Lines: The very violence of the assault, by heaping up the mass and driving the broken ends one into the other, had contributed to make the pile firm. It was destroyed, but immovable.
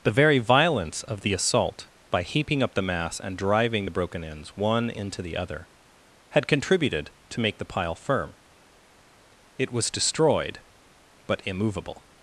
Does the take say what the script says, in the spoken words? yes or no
yes